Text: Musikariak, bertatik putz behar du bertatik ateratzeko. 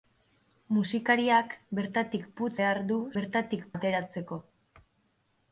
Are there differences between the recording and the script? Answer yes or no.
no